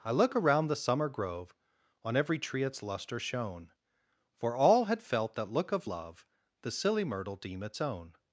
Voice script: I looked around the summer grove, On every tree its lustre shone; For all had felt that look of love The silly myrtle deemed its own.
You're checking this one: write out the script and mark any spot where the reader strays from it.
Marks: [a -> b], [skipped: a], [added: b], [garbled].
I [looked -> look] around the summer grove, On every tree its lustre shone; For all had felt that look of love The silly myrtle [deemed -> deem] its own.